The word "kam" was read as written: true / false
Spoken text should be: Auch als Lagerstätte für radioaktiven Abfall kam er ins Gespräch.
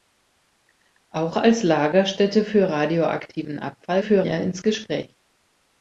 false